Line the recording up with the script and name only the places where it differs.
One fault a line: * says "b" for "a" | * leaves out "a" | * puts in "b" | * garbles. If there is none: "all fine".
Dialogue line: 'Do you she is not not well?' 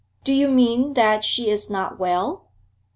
* puts in "mean that"
* leaves out "not"